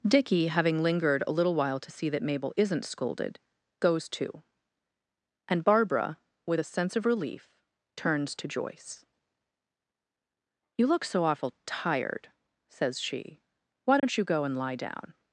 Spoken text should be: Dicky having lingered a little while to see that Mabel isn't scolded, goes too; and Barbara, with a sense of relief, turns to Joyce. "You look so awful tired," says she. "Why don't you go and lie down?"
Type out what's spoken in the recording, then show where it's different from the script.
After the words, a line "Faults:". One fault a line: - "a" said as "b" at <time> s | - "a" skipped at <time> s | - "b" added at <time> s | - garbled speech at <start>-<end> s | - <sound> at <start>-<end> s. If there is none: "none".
Dicky having lingered a little while to see that Mabel isn't scolded, goes too; and Barbara, with a sense of relief, turns to Joyce. "You look so awful tired," says she. "Why don't you go and lie down?"
Faults:
- dropout at 14.0-14.0 s